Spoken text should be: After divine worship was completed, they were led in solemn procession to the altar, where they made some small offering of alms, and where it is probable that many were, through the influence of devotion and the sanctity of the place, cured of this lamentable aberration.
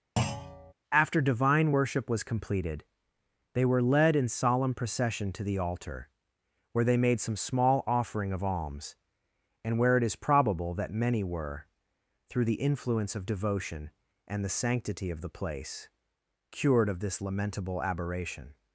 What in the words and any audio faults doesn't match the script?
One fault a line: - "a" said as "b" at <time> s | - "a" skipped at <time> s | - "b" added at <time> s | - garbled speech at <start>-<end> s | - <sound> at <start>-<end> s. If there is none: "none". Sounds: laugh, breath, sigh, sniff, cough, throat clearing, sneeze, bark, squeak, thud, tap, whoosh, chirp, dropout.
- thud at 0.2-0.7 s